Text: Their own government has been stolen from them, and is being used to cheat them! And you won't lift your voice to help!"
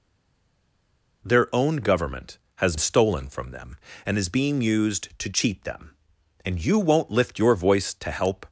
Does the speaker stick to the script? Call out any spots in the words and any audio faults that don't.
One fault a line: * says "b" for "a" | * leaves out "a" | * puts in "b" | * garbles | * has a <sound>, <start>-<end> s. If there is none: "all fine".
* leaves out "been"